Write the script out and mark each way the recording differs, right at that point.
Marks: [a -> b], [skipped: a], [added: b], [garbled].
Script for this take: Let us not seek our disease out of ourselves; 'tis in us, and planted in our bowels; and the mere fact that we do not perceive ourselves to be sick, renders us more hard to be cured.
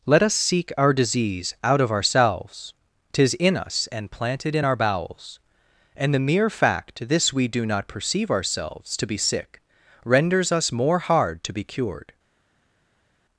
Let us [skipped: not] seek our disease out of ourselves; 'tis in us, and planted in our bowels; and the mere fact [that -> this] we do not perceive ourselves to be sick, renders us more hard to be cured.